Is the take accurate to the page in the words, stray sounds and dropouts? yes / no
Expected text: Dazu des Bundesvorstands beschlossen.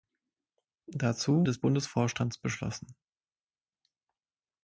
yes